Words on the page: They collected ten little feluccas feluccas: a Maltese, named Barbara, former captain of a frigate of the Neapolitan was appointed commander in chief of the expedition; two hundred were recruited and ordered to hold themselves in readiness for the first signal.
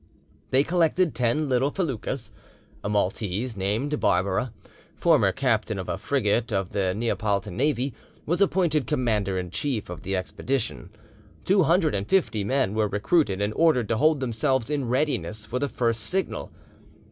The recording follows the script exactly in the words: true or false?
false